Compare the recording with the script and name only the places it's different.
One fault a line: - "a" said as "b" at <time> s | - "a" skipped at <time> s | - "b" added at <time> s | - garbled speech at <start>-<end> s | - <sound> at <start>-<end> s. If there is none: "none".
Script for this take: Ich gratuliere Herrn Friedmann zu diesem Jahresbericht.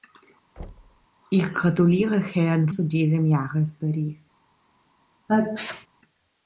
- thud at 0.6-1.1 s
- "Friedmann" skipped at 2.7 s
- sneeze at 5.3-5.9 s